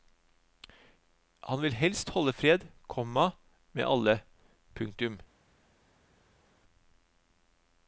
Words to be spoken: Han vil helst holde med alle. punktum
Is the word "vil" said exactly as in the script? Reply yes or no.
yes